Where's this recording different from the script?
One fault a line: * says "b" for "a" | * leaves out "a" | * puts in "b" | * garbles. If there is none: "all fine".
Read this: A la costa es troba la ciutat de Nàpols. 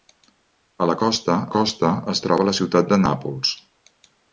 * puts in "costa"